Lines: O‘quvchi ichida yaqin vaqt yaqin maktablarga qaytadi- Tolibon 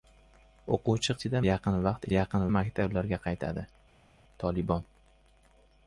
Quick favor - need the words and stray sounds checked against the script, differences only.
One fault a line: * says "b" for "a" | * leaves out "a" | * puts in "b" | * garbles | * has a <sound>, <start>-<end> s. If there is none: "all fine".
all fine